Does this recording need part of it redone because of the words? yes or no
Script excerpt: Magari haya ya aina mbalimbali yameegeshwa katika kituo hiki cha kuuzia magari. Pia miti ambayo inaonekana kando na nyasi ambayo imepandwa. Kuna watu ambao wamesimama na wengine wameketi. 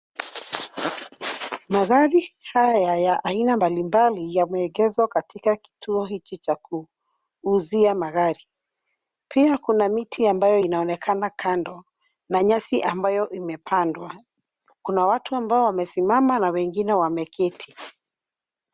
yes